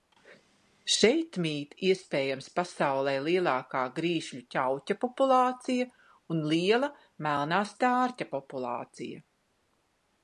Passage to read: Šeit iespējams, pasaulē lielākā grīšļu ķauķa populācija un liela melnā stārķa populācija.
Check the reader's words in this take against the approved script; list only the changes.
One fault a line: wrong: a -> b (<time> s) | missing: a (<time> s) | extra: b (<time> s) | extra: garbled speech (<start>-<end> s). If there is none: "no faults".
extra: mīt (1.4 s)